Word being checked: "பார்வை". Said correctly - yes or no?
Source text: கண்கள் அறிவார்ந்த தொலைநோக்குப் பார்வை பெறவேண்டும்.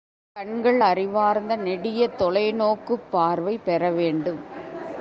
yes